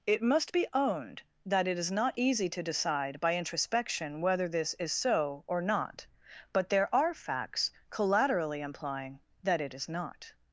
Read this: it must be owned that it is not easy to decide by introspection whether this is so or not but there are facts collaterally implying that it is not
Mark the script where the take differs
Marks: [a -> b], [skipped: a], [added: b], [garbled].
it must be owned that it is not easy to decide by introspection whether this is so or not but there are facts collaterally implying that it is not